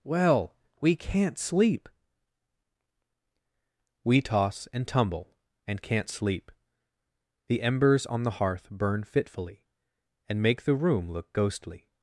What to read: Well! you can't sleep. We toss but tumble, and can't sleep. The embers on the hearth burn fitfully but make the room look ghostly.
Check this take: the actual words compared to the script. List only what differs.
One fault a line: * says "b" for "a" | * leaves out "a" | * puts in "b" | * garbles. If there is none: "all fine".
* says "we" for "you"
* says "and" for "but"
* says "and" for "but"